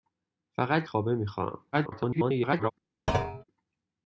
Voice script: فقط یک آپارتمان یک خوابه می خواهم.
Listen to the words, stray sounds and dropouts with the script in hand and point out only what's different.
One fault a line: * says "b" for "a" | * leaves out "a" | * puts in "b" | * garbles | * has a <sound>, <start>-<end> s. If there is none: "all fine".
* leaves out "یک آپارتمان یک"
* garbles
* has a thud, 3.1-3.4 s